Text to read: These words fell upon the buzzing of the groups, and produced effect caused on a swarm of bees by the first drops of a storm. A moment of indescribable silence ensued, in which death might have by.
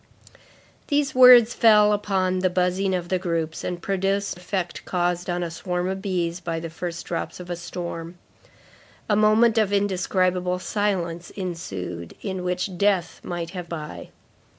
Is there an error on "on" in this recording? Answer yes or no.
no